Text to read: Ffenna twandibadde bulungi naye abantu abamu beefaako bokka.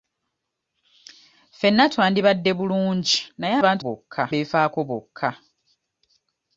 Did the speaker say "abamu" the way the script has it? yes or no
no